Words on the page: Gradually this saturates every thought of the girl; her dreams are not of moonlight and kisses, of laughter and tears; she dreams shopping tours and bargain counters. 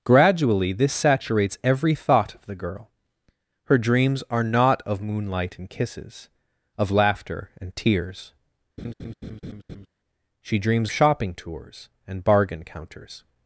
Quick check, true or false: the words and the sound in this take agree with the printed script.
false